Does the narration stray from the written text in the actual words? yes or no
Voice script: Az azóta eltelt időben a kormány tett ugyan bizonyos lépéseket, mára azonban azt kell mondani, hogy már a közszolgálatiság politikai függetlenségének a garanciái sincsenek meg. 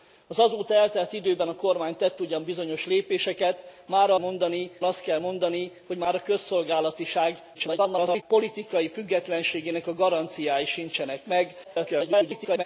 yes